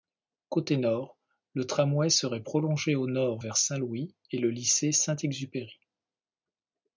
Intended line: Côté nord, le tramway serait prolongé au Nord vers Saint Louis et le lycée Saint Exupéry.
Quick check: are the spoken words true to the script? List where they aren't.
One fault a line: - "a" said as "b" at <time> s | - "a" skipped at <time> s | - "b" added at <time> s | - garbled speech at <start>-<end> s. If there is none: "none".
none